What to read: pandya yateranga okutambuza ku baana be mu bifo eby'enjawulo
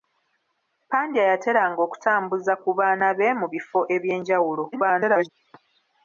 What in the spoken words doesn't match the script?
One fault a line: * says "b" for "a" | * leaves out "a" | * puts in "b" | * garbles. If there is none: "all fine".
* garbles